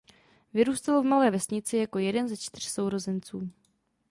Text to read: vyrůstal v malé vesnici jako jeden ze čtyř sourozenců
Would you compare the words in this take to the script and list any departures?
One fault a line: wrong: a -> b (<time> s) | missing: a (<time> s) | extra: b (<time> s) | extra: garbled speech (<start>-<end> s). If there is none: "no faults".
no faults